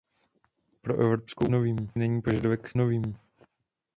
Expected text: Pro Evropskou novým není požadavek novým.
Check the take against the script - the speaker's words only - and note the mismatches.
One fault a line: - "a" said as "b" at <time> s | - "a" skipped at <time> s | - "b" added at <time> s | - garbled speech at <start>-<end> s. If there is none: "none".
none